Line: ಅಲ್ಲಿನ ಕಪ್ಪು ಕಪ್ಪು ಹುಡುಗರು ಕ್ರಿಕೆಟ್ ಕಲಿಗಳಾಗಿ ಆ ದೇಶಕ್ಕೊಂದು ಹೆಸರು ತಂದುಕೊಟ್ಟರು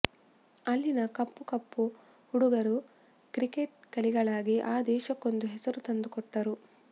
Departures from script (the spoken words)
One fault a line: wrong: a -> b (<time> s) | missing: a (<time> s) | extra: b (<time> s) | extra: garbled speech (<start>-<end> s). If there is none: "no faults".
no faults